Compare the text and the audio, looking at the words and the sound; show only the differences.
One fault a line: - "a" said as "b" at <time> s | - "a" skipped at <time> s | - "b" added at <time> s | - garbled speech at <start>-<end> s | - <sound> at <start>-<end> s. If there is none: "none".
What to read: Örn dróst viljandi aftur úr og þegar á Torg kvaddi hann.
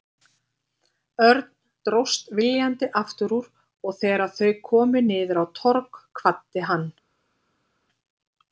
- "þau komu niður" added at 4.4 s